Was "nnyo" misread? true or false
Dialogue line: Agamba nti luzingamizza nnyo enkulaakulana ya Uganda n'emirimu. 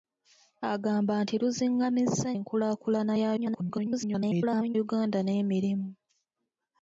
true